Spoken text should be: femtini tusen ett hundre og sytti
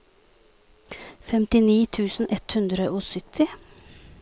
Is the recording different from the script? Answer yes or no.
no